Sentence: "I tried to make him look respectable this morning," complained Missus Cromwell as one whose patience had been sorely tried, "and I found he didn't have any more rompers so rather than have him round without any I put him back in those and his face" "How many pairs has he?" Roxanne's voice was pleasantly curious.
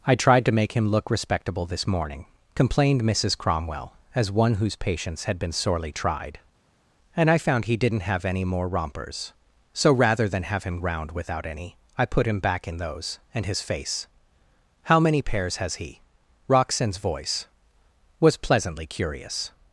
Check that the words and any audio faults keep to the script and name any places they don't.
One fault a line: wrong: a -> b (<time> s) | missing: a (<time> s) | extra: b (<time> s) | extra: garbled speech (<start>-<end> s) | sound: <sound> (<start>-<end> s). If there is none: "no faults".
no faults